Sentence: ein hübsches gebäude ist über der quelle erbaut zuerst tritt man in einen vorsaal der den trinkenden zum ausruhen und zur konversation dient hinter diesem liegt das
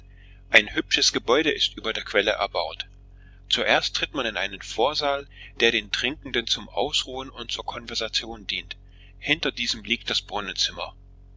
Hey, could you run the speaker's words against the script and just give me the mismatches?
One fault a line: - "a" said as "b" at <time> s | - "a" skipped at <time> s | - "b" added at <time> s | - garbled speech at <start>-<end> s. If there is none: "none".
none